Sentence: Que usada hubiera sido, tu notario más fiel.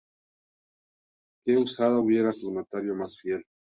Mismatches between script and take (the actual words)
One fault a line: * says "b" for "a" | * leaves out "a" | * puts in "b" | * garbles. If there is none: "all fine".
* leaves out "sido"